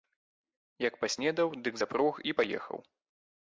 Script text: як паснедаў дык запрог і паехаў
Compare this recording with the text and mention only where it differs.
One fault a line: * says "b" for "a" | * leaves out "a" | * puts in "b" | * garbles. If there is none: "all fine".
all fine